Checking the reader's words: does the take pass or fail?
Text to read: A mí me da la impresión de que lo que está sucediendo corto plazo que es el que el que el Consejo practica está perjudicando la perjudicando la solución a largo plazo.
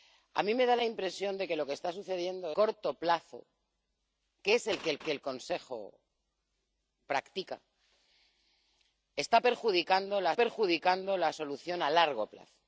pass